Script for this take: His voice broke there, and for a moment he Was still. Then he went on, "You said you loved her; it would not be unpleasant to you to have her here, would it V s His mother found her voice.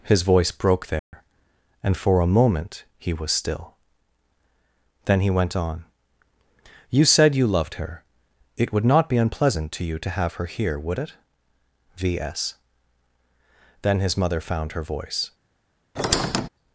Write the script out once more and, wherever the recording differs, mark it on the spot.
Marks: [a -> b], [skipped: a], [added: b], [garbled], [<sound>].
His voice broke there, [dropout] and for a moment he Was still. Then he went on, "You said you loved her; it would not be unpleasant to you to have her here, would it V s [added: Then] His mother found her voice. [squeak]